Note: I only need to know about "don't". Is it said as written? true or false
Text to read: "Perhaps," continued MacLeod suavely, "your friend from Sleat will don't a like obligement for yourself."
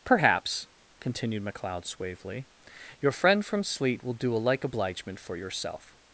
false